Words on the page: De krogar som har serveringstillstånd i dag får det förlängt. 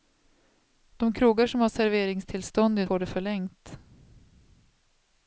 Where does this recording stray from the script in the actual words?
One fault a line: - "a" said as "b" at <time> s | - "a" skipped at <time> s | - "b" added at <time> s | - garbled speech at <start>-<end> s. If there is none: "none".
- "dag" skipped at 2.9 s